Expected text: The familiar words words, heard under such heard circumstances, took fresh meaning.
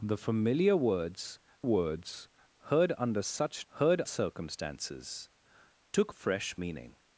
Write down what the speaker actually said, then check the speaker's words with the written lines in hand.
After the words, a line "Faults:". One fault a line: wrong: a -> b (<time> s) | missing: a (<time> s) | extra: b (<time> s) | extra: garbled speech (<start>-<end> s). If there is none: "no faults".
The familiar words words, heard under such heard circumstances, took fresh meaning.
Faults:
no faults